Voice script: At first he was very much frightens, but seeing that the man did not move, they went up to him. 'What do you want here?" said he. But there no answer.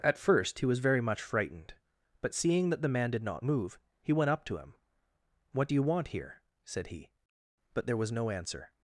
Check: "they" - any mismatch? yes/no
yes